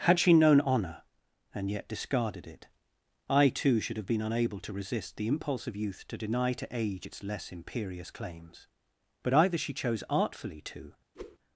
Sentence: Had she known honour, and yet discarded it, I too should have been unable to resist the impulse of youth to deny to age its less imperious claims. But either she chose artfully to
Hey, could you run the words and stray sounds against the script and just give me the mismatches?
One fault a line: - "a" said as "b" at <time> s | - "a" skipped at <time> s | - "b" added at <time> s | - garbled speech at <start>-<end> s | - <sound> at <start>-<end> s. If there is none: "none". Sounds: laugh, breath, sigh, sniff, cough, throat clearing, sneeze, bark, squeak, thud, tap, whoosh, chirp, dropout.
- whoosh at 11.1-11.4 s